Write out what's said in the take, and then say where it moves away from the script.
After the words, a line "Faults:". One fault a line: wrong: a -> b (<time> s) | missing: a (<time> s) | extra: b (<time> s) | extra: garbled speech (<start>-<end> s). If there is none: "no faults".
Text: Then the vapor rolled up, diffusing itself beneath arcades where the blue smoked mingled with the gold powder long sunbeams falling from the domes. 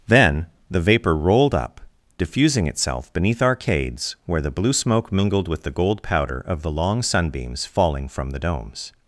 Then the vapor rolled up, diffusing itself beneath arcades where the blue smoke mingled with the gold powder of the long sunbeams falling from the domes.
Faults:
wrong: smoked -> smoke (4.7 s)
extra: of the (6.4 s)